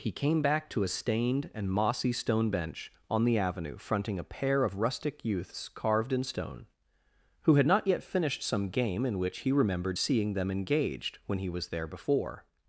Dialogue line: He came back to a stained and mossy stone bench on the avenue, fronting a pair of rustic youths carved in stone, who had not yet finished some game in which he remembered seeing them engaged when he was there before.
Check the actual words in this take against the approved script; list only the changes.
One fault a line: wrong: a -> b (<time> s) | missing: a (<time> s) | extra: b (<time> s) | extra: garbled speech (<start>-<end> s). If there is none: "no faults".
no faults